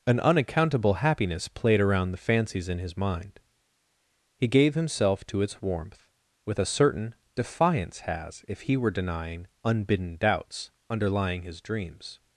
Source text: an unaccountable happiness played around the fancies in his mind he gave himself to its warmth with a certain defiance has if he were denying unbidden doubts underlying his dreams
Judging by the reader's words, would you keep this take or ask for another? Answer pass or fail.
pass